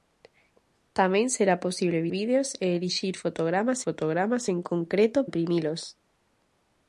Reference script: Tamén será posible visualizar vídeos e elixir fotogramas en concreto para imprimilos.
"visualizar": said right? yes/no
no